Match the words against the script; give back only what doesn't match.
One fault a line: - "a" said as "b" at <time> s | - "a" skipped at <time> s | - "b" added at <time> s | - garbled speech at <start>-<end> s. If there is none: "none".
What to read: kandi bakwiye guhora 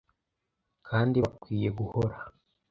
none